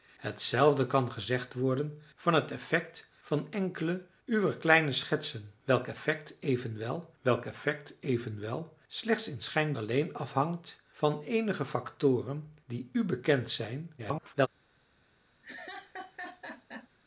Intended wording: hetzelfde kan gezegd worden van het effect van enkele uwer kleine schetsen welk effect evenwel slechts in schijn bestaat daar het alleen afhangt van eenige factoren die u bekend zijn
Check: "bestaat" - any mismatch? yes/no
yes